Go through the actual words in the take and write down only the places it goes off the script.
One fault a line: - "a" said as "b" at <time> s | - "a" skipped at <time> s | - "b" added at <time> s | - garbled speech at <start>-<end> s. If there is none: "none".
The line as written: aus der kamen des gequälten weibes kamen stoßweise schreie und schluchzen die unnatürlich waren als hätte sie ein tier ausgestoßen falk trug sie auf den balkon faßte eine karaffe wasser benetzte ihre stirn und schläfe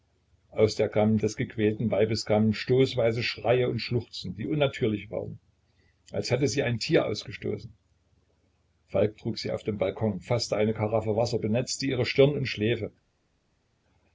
none